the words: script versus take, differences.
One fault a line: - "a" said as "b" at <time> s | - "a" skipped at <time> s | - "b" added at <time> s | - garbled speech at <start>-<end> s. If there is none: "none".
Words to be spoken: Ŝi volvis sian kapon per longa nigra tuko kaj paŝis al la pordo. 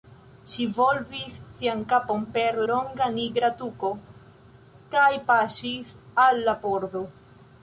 none